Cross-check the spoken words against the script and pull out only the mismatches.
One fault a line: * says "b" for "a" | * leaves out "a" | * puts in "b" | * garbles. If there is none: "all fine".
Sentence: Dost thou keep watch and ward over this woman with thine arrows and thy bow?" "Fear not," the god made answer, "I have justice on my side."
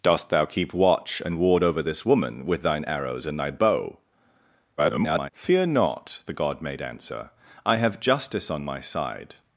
* garbles